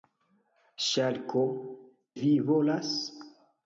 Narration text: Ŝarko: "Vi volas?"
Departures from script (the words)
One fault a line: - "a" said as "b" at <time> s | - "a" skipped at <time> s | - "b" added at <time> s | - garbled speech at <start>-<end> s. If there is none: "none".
none